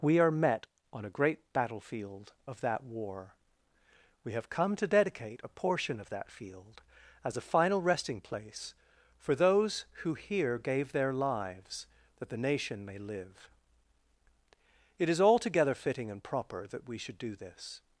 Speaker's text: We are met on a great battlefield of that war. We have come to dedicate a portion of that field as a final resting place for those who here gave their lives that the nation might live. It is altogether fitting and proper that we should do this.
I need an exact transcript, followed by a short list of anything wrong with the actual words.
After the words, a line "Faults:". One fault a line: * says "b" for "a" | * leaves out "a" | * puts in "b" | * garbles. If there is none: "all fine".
We are met on a great battlefield of that war. We have come to dedicate a portion of that field as a final resting place for those who here gave their lives that the nation may live. It is altogether fitting and proper that we should do this.
Faults:
* says "may" for "might"